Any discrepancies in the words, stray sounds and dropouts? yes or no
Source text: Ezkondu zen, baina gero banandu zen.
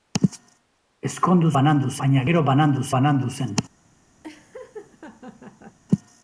yes